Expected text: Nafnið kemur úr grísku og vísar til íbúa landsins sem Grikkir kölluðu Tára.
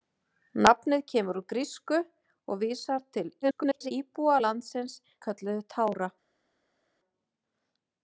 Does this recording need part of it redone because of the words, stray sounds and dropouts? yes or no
yes